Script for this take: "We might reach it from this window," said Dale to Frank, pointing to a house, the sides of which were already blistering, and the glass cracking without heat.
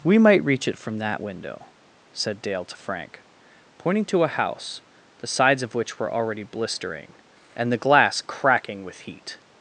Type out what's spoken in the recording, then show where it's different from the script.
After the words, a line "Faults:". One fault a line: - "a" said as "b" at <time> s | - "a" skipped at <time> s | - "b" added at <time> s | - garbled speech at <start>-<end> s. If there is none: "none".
"We might reach it from that window," said Dale to Frank, pointing to a house, the sides of which were already blistering, and the glass cracking with heat.
Faults:
- "this" said as "that" at 1.0 s
- "without" said as "with" at 8.8 s